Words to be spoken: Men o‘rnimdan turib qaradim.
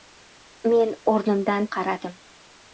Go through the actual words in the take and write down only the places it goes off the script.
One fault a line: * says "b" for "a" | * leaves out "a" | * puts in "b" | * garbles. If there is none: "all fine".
* leaves out "turib"